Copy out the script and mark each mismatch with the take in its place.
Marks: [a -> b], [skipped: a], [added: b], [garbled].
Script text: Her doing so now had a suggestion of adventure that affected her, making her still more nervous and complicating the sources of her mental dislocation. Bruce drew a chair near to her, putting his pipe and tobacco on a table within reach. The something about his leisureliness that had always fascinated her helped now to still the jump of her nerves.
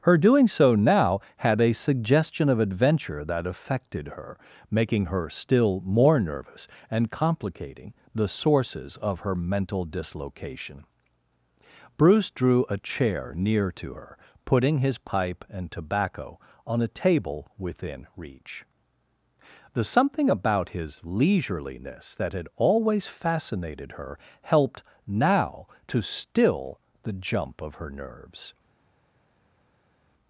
Her doing so now had a suggestion of adventure that affected her, making her still more nervous and complicating the sources of her mental dislocation. Bruce drew a chair near to her, putting his pipe and tobacco on a table within reach. The something about his leisureliness that had always fascinated her helped now to still the jump of her nerves.